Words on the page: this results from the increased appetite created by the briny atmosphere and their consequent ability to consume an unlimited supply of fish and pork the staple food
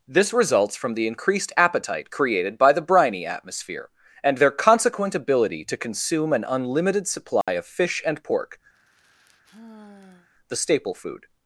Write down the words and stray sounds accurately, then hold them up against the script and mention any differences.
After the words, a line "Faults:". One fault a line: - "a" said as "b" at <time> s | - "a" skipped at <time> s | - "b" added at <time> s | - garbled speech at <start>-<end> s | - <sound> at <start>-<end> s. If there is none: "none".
this results from the increased appetite created by the briny atmosphere and their consequent ability to consume an unlimited supply of fish and pork the staple food
Faults:
- dropout at 7.4-7.5 s
- sigh at 8.7-10.3 s